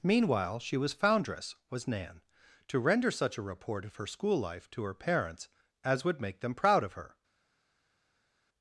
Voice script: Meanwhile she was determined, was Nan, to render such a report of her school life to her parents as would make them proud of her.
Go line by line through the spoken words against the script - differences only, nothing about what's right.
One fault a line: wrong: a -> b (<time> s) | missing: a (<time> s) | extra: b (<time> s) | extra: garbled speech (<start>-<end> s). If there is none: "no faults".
wrong: determined -> foundress (0.9 s)